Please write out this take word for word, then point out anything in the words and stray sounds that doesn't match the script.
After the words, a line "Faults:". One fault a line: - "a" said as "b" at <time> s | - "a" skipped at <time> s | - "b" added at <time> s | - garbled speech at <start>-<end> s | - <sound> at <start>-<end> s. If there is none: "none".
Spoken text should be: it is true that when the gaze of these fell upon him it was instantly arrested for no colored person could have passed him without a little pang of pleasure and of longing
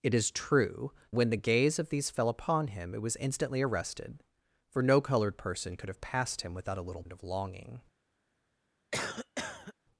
it is true when the gaze of these fell upon him it was instantly arrested for no colored person could have passed him without a little and of longing
Faults:
- "that" skipped at 0.9 s
- "pang of pleasure" skipped at 7.0 s
- cough at 8.9-9.7 s